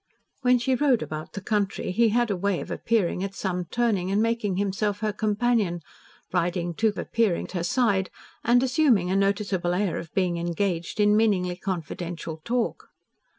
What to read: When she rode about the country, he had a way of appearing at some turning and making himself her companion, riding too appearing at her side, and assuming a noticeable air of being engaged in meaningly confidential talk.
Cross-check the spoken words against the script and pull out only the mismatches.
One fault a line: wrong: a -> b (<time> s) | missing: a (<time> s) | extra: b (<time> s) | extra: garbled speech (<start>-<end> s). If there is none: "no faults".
no faults